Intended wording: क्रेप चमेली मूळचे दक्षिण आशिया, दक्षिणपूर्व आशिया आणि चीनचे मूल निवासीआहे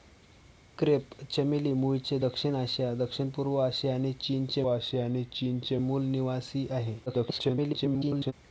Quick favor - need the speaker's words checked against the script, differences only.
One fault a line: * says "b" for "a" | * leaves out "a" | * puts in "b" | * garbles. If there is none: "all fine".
* puts in "आशिया आणि चीनचे"
* garbles